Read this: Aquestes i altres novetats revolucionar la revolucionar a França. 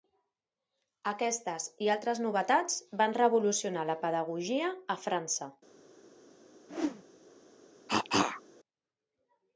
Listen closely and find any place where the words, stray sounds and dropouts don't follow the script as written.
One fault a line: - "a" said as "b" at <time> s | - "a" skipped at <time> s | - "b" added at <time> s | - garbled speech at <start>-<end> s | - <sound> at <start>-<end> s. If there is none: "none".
- "van" added at 3.0 s
- "revolucionar" said as "pedagogia" at 4.1 s
- whoosh at 6.7-7.0 s
- cough at 7.9-8.4 s